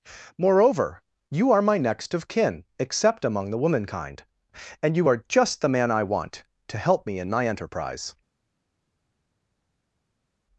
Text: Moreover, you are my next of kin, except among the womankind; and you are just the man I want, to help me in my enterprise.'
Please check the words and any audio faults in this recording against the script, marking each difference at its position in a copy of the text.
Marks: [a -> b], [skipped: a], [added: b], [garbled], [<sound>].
Moreover, you are my next of kin, except among the womankind; and you are just the man I want, to help me in my enterprise.'